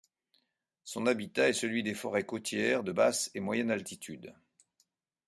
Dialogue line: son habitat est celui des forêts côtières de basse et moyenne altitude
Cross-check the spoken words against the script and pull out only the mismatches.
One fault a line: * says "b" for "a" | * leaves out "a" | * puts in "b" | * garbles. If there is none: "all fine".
all fine